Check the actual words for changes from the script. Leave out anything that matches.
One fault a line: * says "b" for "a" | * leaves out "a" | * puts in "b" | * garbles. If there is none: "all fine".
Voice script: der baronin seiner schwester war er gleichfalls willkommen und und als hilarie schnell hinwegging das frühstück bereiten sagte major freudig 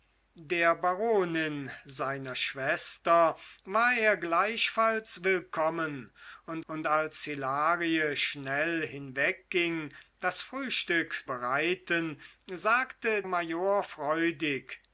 all fine